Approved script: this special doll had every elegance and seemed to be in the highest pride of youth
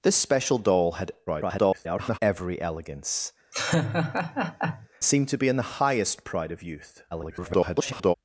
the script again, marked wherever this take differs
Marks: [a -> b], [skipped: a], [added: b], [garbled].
this special doll had [garbled] every elegance [skipped: and] seemed to be in the highest pride of youth [garbled]